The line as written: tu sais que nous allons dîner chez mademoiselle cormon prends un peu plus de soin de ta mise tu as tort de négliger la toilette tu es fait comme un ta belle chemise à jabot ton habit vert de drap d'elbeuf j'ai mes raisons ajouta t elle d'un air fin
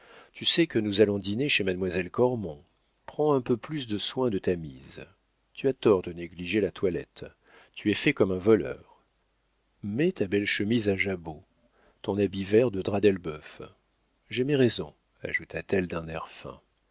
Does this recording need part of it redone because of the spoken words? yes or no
yes